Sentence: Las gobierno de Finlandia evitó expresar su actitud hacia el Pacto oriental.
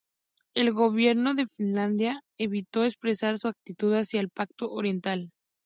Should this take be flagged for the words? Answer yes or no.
yes